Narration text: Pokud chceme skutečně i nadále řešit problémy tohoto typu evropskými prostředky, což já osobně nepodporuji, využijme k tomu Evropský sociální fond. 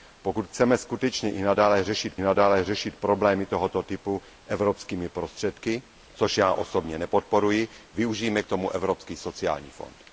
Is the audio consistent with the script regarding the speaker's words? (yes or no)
no